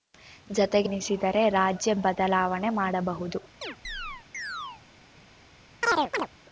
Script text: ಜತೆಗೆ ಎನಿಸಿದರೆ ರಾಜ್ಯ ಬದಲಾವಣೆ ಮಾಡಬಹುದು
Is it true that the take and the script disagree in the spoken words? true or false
false